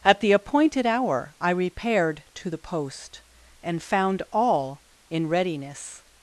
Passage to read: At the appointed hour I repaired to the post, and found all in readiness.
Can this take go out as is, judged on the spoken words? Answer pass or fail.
pass